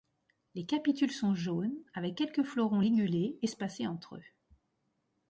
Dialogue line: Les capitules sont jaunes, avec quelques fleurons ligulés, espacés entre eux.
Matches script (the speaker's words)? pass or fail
pass